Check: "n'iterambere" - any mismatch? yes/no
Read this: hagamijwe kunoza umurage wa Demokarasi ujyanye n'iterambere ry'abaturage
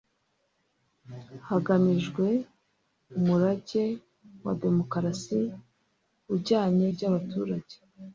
yes